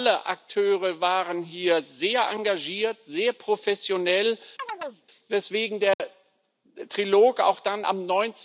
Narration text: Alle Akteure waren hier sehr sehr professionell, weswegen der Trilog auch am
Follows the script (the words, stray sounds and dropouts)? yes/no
no